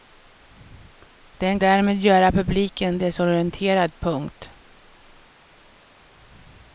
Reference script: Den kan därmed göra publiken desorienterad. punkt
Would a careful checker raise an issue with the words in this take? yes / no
yes